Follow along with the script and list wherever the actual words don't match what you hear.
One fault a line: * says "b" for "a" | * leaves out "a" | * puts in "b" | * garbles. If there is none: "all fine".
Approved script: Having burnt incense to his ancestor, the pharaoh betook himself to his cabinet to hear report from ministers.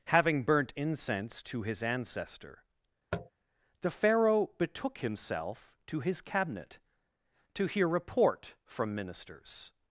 all fine